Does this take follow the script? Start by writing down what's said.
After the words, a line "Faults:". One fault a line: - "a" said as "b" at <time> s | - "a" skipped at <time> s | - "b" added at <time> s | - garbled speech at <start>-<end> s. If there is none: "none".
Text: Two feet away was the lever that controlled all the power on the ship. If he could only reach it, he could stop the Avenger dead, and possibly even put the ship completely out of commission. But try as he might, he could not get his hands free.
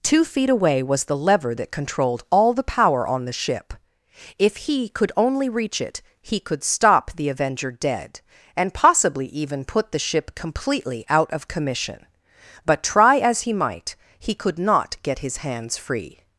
Two feet away was the lever that controlled all the power on the ship. If he could only reach it, he could stop the Avenger dead, and possibly even put the ship completely out of commission. But try as he might, he could not get his hands free.
Faults:
none